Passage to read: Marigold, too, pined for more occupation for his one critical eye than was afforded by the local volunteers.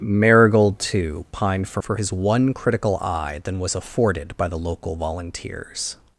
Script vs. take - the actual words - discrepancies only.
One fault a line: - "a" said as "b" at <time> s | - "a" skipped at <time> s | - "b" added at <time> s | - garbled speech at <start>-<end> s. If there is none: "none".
- "more occupation" skipped at 1.8 s